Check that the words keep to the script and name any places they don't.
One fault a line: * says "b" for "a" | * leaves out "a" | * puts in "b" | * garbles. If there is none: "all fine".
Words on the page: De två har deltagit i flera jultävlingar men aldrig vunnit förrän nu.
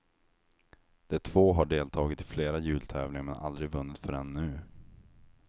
all fine